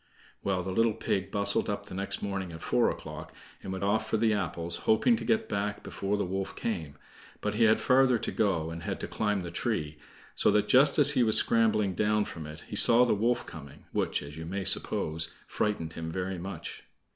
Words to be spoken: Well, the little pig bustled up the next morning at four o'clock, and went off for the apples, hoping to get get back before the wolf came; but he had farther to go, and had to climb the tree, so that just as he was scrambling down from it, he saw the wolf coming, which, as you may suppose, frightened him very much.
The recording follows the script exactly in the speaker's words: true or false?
false